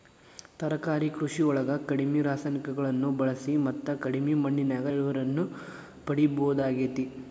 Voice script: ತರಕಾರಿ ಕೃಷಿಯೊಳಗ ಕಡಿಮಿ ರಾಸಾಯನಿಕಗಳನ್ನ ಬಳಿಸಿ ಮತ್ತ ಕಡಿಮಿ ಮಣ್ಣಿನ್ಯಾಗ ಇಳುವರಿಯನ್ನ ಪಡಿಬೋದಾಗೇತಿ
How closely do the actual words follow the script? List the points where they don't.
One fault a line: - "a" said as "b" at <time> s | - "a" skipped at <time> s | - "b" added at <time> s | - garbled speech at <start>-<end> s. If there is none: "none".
none